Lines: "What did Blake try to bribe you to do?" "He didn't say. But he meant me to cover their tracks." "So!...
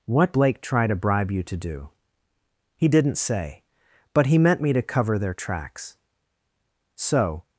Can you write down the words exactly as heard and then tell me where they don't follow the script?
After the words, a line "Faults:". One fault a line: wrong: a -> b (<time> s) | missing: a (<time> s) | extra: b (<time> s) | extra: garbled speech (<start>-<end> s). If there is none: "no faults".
"What Blake try to bribe you to do?" "He didn't say. But he meant me to cover their tracks." "So!...
Faults:
missing: did (0.3 s)